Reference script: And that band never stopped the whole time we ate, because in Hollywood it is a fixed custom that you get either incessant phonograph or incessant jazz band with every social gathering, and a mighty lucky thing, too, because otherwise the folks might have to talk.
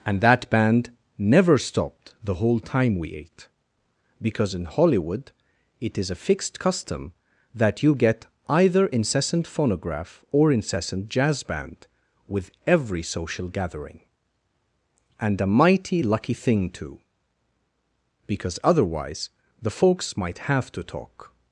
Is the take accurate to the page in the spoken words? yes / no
yes